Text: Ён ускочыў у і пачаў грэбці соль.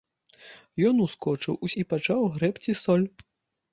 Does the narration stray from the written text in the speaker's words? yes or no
no